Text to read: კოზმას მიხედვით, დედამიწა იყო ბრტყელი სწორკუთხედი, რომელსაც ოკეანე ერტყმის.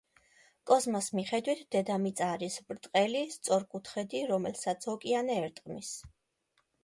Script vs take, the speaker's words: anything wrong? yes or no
yes